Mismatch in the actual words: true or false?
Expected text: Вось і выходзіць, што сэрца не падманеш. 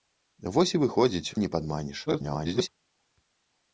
true